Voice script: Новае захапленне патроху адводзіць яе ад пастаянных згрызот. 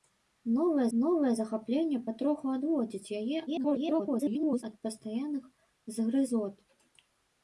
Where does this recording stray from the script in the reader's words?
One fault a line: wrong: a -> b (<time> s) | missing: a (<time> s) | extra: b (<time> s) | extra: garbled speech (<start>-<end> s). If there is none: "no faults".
extra: новае (1.0 s)
extra: garbled speech (3.5-4.6 s)